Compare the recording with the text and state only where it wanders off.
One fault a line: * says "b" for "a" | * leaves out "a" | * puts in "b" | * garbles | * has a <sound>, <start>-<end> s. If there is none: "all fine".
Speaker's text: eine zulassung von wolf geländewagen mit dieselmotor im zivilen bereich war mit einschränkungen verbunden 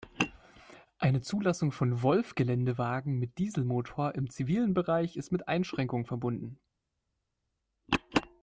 * says "ist" for "war"